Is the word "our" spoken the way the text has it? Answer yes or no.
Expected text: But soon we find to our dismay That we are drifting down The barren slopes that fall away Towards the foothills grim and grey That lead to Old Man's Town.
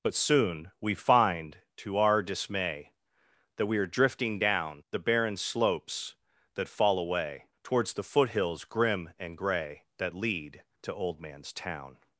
yes